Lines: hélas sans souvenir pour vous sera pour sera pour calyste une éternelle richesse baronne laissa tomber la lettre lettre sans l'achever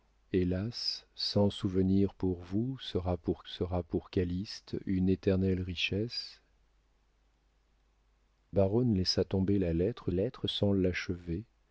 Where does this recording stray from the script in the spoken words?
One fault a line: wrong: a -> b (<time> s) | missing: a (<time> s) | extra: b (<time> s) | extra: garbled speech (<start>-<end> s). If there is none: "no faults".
no faults